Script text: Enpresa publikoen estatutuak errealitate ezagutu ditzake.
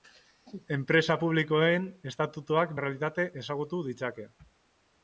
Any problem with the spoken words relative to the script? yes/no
no